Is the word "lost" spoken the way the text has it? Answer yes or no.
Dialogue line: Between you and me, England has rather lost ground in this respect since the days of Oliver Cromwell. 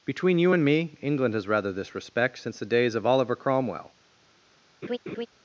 no